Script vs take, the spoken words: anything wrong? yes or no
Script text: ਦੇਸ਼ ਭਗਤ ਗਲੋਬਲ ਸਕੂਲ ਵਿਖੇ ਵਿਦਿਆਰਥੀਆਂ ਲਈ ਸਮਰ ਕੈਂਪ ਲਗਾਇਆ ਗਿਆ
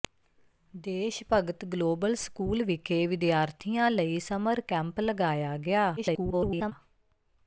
yes